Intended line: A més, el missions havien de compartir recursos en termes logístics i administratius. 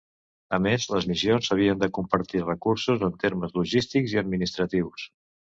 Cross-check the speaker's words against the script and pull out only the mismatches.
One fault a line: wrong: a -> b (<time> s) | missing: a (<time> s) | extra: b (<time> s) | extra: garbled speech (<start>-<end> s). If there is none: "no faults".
wrong: el -> les (0.9 s)